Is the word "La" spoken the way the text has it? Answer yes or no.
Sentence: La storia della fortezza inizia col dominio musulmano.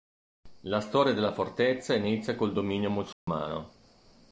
yes